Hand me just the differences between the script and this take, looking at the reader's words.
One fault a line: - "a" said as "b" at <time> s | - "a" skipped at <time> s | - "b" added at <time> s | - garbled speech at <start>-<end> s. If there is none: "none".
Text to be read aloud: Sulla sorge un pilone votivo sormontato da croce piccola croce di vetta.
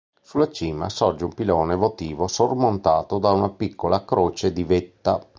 - "cima" added at 0.5 s
- "croce" said as "una" at 3.3 s